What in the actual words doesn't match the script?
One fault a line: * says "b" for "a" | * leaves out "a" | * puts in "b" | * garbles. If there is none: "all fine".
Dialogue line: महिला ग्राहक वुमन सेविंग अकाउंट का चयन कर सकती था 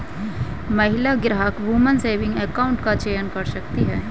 * says "है" for "था"